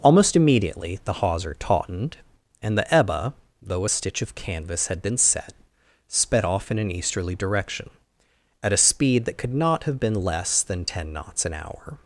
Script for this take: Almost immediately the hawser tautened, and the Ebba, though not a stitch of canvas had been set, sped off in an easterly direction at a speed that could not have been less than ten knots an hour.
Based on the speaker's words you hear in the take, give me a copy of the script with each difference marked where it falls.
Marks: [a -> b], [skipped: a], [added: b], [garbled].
Almost immediately the hawser tautened, and the Ebba, though [skipped: not] a stitch of canvas had been set, sped off in an easterly direction at a speed that could not have been less than ten knots an hour.